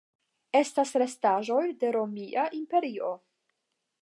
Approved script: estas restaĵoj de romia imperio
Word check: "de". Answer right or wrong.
right